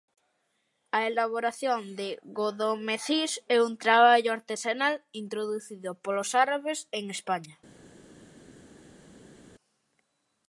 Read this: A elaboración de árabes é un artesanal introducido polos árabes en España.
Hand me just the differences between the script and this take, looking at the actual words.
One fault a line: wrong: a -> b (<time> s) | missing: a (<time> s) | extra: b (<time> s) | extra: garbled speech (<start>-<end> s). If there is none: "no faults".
wrong: árabes -> godomecís (2.4 s)
extra: traballo (3.8 s)